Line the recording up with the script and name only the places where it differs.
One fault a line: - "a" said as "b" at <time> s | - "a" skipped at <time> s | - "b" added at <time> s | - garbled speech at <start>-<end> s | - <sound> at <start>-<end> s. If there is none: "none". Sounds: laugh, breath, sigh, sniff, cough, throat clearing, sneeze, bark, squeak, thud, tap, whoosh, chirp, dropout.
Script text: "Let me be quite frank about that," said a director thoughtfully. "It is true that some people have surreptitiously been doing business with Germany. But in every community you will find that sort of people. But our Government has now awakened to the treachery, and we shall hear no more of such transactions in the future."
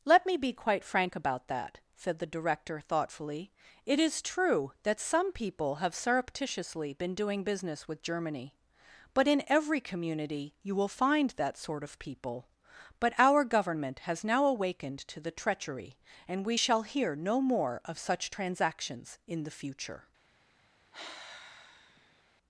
- "a" said as "the" at 2.2 s
- sigh at 20.9-22.2 s